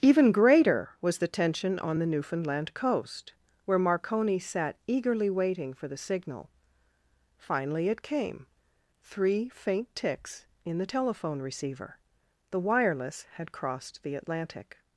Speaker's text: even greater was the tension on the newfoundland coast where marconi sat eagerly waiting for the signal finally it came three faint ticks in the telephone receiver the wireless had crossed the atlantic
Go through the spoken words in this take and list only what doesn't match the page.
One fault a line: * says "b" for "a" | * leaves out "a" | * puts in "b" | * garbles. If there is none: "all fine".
all fine